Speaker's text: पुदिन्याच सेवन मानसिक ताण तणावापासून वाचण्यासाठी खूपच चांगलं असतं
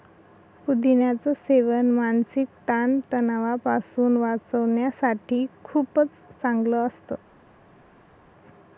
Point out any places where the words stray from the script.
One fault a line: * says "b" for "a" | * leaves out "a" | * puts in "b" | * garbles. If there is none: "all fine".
all fine